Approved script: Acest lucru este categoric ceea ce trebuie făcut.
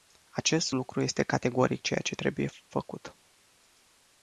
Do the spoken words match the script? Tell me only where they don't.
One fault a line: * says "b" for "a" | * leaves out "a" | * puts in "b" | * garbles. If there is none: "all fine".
all fine